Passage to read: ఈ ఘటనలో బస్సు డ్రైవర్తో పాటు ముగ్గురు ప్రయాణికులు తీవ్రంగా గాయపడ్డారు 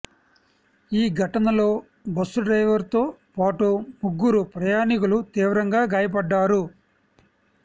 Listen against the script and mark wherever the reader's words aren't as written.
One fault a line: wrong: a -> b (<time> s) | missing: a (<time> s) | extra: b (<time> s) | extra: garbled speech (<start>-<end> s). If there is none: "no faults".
no faults